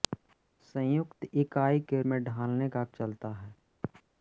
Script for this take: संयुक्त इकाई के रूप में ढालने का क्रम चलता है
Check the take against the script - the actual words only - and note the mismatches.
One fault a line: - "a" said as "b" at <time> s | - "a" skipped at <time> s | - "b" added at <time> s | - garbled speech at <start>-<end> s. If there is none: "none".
- "रूप" skipped at 2.0 s
- "क्रम" skipped at 2.8 s